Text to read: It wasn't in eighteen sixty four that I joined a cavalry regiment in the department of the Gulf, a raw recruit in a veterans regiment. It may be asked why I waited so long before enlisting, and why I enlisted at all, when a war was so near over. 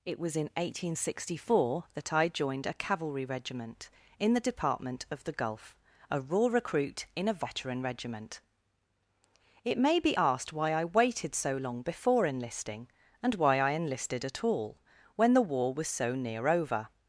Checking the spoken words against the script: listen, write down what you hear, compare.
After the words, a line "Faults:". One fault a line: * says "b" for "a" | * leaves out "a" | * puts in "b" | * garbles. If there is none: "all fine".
It was in eighteen sixty four that I joined a cavalry regiment in the department of the Gulf, a raw recruit in a veteran regiment. It may be asked why I waited so long before enlisting, and why I enlisted at all, when the war was so near over.
Faults:
* says "was" for "wasn't"
* says "veteran" for "veterans"
* says "the" for "a"